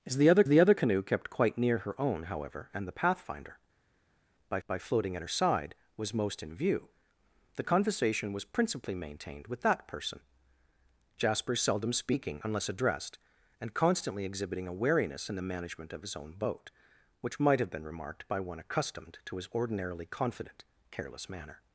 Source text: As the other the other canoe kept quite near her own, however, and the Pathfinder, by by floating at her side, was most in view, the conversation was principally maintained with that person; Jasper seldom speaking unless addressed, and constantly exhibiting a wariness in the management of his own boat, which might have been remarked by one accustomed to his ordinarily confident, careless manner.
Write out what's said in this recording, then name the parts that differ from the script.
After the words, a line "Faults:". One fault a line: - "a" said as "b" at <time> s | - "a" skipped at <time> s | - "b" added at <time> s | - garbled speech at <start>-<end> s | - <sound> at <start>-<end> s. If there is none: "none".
As the other the other canoe kept quite near her own, however, and the Pathfinder, by by floating at her side, was most in view, the conversation was principally maintained with that person; Jasper seldom speaking unless addressed, and constantly exhibiting a wariness in the management of his own boat, which might have been remarked by one accustomed to his ordinarily confident, careless manner.
Faults:
none